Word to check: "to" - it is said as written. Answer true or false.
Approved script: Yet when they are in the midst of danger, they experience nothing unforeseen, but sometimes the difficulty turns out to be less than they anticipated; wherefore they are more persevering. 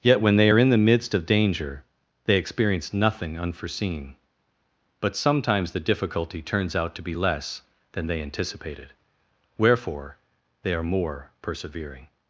true